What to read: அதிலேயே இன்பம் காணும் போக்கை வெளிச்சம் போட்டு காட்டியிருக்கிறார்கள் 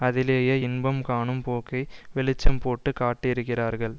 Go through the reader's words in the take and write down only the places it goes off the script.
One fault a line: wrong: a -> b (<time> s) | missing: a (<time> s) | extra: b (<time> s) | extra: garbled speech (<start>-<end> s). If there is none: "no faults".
no faults